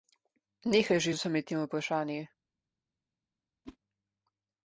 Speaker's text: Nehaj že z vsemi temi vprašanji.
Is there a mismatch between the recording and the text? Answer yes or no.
no